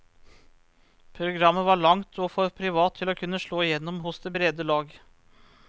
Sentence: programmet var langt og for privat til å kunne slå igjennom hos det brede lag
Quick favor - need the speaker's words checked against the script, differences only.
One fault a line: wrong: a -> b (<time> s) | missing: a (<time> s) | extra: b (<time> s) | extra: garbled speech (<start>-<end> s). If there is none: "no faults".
no faults